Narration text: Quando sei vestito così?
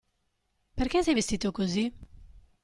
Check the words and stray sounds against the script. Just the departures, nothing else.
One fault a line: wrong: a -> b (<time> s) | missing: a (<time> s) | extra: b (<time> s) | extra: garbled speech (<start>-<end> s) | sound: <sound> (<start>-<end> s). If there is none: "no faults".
wrong: Quando -> Perché (0.7 s)